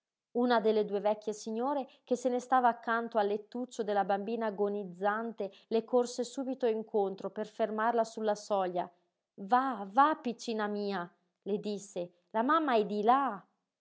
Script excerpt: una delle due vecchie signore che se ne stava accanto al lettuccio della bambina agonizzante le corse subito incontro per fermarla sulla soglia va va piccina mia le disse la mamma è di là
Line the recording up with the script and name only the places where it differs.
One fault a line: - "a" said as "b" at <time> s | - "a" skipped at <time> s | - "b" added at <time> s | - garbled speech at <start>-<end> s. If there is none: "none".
none